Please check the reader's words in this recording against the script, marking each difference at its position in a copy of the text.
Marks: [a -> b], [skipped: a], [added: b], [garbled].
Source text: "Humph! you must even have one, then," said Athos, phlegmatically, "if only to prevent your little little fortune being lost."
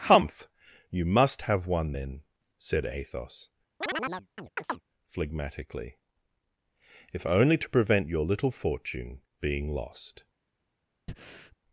"Humph! you must [skipped: even] have one, then," said Athos, phlegmatically, "if only to prevent your little [skipped: little] fortune being lost."